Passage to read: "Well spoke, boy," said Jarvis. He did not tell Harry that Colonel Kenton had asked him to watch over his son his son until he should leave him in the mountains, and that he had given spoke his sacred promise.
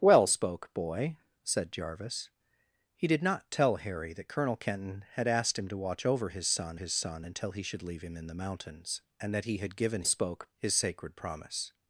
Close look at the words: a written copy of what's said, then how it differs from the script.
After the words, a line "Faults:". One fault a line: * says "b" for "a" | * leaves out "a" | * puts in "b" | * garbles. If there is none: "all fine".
"Well spoke, boy," said Jarvis. He did not tell Harry that Colonel Kenton had asked him to watch over his son his son until he should leave him in the mountains, and that he had given spoke his sacred promise.
Faults:
all fine